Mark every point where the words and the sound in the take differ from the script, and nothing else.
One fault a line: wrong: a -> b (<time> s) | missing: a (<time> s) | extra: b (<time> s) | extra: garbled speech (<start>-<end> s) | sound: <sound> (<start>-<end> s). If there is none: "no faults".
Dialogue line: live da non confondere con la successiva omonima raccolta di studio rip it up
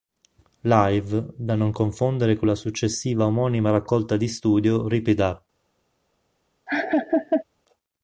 sound: laugh (6.7-7.4 s)